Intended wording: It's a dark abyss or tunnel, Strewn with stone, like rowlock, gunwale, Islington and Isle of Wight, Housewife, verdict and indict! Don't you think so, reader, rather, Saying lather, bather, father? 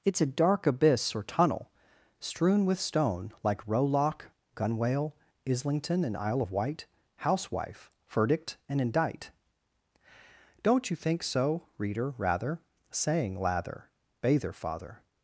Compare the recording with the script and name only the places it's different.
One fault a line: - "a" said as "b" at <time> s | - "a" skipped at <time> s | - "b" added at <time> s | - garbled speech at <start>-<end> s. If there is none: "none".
none